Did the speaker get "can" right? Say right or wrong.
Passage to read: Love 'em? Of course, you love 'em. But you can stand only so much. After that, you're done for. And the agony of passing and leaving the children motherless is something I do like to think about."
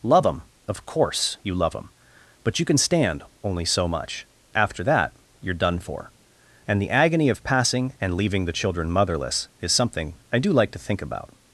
right